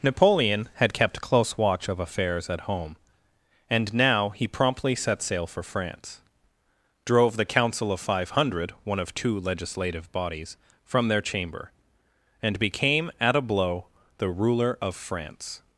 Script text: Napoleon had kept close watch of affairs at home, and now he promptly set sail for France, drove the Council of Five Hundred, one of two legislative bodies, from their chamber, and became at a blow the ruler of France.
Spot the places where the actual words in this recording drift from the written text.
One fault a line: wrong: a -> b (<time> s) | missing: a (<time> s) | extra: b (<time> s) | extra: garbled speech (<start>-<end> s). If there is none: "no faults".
no faults